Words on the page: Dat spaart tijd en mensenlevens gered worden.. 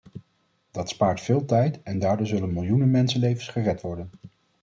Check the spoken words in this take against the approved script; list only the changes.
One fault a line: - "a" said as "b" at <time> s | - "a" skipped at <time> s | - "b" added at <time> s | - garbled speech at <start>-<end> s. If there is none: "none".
- "veel" added at 1.2 s
- "daardoor zullen miljoenen" added at 2.0 s